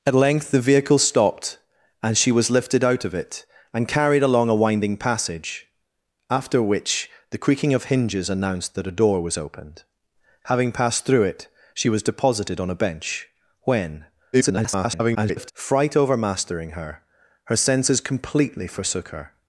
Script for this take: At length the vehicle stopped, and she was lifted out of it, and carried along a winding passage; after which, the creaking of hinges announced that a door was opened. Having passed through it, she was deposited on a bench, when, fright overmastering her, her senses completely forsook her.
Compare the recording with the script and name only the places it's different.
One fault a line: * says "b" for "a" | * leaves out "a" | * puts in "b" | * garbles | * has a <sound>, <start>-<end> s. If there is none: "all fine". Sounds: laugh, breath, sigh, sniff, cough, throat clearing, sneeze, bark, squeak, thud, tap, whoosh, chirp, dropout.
* garbles